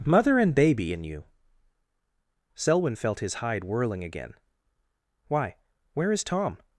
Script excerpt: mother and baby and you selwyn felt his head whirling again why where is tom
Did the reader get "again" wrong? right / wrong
right